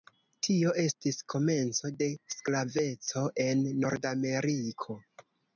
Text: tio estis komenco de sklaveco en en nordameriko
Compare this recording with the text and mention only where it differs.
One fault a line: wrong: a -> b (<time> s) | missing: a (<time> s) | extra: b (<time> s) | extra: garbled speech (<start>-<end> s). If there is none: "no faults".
missing: en (3.7 s)